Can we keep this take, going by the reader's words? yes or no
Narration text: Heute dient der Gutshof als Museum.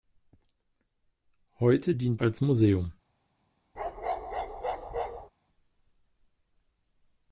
no